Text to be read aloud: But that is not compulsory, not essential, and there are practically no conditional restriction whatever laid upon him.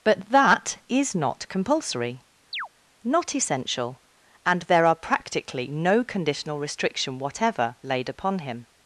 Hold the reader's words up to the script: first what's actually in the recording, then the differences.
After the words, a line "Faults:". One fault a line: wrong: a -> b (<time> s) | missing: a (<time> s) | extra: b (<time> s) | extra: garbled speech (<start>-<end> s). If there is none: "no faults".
But that is not compulsory, not essential, and there are practically no conditional restriction whatever laid upon him.
Faults:
no faults